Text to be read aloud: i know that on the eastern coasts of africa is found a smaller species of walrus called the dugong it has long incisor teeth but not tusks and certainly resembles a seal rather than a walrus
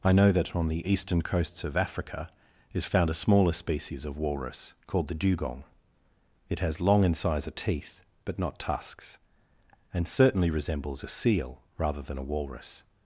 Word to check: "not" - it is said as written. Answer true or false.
true